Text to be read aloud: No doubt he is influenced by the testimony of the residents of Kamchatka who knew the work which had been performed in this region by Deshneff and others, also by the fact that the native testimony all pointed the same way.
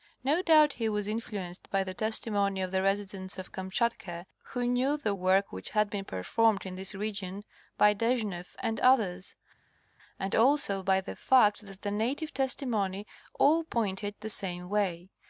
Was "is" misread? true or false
true